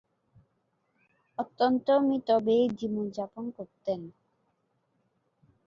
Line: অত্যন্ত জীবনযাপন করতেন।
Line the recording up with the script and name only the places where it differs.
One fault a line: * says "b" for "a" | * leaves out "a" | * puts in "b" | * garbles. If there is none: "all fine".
* puts in "মিতব্যয়ী"